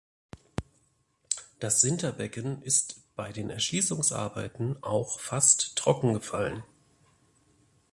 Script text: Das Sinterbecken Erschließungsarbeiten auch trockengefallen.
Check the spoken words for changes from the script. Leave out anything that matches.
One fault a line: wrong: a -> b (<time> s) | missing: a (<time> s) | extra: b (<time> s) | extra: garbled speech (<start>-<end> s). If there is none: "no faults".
extra: ist bei den (2.6 s)
extra: fast (5.2 s)